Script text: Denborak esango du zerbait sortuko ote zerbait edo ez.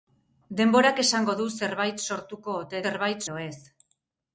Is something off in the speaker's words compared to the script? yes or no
no